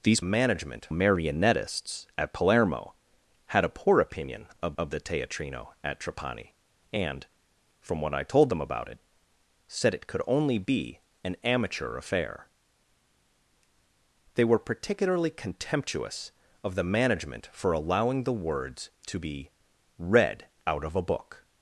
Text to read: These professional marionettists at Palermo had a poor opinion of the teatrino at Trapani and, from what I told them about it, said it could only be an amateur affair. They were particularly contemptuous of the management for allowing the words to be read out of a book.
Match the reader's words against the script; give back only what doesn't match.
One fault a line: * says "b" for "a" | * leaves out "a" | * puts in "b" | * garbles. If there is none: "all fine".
* says "management" for "professional"
* puts in "of"